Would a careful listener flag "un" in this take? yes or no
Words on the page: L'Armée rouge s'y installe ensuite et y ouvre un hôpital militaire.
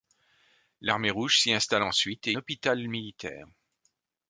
yes